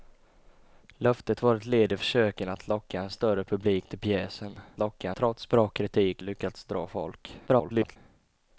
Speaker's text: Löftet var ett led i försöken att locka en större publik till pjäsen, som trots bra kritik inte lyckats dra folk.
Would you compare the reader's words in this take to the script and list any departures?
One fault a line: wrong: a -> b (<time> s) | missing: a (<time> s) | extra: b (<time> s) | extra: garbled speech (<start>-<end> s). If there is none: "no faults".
wrong: som -> locka (4.8 s)
missing: inte (6.2 s)
extra: garbled speech (7.5-8.0 s)